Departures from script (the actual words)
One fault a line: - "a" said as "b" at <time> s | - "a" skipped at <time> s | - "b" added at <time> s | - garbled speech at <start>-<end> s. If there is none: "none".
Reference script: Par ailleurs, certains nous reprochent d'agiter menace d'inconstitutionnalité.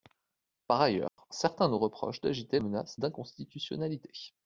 none